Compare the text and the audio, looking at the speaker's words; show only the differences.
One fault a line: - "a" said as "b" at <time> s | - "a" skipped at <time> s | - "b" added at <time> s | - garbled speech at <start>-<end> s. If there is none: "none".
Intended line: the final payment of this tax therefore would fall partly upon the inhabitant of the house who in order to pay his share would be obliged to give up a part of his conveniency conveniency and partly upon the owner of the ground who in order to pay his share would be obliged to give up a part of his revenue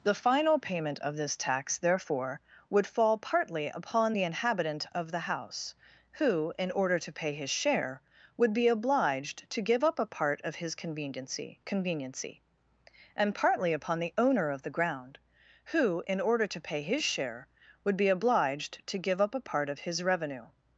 none